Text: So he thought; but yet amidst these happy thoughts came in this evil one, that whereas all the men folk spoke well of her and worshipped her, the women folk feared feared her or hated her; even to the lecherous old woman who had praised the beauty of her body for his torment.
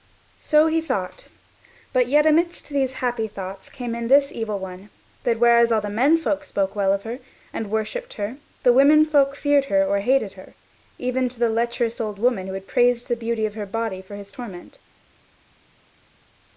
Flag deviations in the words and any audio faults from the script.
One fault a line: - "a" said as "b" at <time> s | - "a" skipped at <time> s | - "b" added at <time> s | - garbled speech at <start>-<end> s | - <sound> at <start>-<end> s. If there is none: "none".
- "feared" skipped at 9.7 s